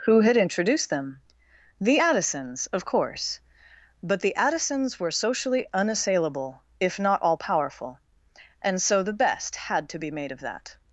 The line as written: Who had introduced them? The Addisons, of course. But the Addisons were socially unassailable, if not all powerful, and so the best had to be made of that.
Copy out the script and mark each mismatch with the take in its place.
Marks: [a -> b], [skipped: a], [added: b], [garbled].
Who had introduced them? The Addisons, of course. But the Addisons were socially unassailable, if not all powerful, and so the best had to be made of that.